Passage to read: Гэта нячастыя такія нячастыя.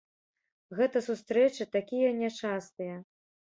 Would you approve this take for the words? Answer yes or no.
no